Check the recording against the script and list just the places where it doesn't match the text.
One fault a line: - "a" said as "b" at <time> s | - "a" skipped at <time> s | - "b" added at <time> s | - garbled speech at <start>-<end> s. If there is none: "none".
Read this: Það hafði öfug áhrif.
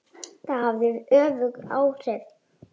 none